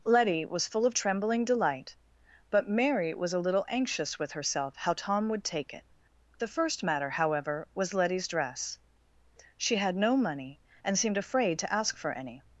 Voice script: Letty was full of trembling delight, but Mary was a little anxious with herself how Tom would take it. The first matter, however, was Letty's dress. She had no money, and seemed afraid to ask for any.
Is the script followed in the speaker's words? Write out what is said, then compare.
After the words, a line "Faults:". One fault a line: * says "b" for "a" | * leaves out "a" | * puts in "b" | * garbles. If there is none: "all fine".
Letty was full of trembling delight, but Mary was a little anxious with herself how Tom would take it. The first matter, however, was Letty's dress. She had no money, and seemed afraid to ask for any.
Faults:
all fine